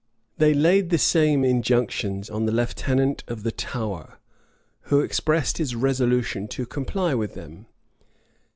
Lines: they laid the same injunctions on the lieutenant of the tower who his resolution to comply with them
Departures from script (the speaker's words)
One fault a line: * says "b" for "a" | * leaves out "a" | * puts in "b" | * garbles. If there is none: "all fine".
* puts in "expressed"